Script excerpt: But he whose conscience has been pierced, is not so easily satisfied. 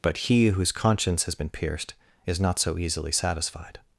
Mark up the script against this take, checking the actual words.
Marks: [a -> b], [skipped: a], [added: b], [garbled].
But he whose conscience has been pierced, is not so easily satisfied.